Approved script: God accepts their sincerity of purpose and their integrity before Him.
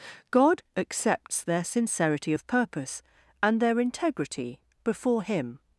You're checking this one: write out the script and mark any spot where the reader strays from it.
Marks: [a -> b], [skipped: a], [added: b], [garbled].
God accepts their sincerity of purpose and their integrity before Him.